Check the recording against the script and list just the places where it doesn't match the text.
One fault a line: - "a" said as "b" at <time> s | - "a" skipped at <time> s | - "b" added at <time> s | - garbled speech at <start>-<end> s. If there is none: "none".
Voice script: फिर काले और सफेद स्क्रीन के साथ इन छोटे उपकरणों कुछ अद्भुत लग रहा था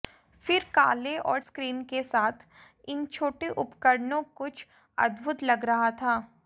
- "सफेद" skipped at 1.4 s